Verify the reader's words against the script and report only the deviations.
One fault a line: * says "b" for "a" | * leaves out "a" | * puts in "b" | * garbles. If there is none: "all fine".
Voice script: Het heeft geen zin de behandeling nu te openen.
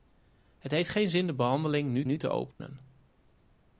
* puts in "nu"